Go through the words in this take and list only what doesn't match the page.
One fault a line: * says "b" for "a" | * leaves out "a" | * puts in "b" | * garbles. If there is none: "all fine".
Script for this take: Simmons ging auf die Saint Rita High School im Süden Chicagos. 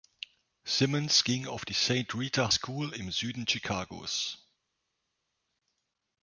* leaves out "High"